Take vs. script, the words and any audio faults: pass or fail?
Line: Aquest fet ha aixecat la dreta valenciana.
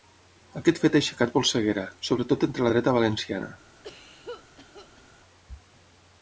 fail